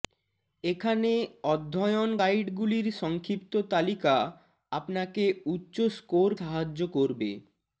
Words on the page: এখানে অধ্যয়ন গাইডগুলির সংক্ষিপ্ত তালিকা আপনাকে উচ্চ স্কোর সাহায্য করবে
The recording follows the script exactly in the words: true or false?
true